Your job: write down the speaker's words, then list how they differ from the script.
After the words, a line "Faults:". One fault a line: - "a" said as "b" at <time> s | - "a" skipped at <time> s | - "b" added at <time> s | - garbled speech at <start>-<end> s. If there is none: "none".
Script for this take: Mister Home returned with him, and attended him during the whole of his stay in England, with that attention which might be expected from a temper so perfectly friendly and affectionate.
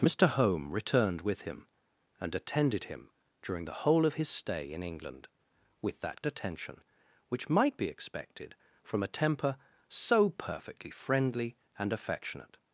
Mister Home returned with him, and attended him during the whole of his stay in England, with that attention which might be expected from a temper so perfectly friendly and affectionate.
Faults:
none